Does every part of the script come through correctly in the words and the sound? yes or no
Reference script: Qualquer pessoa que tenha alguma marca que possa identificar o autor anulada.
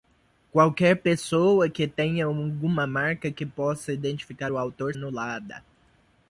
yes